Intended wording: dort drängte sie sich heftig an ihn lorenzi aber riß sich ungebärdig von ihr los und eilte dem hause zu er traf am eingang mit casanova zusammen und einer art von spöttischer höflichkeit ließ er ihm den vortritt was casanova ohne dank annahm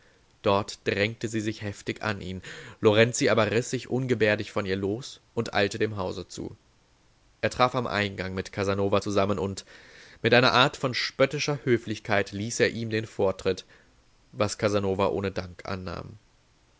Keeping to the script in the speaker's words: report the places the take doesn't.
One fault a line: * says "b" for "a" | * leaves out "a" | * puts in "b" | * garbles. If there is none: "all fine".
* puts in "mit"